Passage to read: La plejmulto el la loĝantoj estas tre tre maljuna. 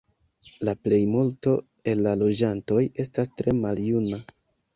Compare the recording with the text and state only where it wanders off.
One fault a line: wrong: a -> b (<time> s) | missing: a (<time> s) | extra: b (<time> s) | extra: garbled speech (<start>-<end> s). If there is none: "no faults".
missing: tre (3.6 s)